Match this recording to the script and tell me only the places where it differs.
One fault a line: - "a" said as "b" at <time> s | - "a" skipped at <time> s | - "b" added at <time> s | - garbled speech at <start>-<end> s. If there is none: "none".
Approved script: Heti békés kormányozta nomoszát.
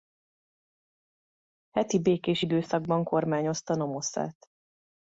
- "időszakban" added at 2.4 s